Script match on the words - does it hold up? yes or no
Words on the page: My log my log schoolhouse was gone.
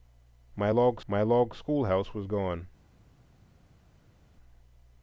yes